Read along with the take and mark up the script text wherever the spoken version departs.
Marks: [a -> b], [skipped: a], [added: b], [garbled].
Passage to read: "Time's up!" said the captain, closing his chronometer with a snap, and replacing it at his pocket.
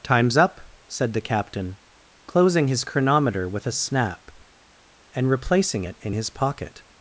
"Time's up!" said the captain, closing his chronometer with a snap, and replacing it [at -> in] his pocket.